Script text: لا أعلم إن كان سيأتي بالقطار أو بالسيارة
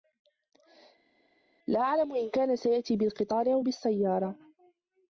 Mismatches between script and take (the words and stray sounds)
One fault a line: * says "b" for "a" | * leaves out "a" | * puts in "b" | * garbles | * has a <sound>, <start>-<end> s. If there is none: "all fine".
all fine